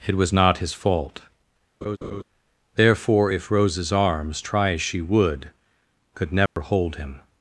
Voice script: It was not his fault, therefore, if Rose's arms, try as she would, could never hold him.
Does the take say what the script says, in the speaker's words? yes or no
yes